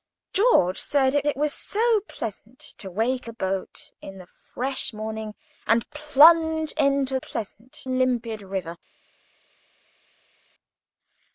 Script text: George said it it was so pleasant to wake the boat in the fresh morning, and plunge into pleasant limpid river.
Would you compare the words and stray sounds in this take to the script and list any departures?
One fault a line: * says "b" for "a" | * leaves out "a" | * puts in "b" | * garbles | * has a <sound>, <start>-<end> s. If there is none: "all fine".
all fine